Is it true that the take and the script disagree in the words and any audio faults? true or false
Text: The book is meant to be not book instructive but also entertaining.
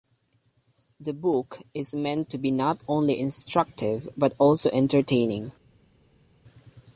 true